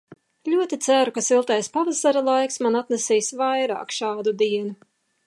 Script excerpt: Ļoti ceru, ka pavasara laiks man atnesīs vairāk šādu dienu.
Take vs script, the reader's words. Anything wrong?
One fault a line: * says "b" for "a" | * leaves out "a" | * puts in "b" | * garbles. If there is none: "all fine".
* puts in "siltais"